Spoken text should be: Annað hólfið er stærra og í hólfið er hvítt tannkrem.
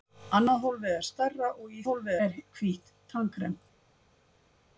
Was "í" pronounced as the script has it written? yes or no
yes